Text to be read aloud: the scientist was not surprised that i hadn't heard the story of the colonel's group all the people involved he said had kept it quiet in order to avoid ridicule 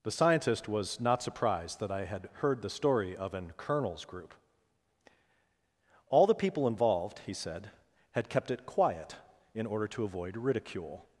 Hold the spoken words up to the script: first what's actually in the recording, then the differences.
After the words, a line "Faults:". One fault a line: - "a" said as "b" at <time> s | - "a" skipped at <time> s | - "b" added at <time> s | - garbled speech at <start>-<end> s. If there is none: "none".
the scientist was not surprised that i had heard the story of an colonel's group all the people involved he said had kept it quiet in order to avoid ridicule
Faults:
- "hadn't" said as "had" at 2.0 s
- "the" said as "an" at 3.4 s